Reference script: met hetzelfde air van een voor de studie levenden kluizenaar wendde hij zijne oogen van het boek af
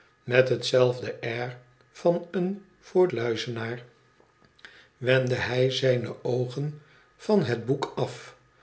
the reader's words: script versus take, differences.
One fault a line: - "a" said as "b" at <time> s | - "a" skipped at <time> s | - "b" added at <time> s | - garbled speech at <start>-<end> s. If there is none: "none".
- "de studie levenden" skipped at 3.1 s